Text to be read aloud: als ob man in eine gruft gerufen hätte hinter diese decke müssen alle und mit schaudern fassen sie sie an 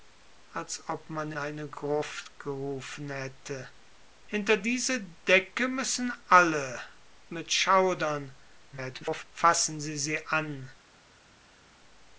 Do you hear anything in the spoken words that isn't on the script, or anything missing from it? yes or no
yes